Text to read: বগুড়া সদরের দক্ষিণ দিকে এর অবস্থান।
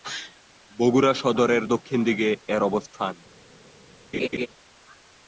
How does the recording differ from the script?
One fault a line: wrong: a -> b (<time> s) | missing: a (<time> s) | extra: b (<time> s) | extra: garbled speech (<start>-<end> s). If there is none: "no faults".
no faults